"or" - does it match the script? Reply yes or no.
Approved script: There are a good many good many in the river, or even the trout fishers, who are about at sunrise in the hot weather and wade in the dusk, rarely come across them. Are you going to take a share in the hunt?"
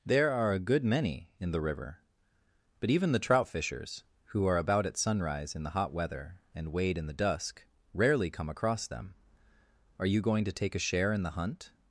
no